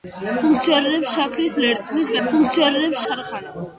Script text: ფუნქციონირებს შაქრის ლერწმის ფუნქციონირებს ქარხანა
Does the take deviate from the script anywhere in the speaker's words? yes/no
no